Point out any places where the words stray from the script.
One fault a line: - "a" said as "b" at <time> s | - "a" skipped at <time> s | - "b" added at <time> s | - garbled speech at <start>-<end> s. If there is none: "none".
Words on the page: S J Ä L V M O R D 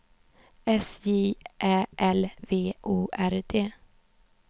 - "M" skipped at 2.7 s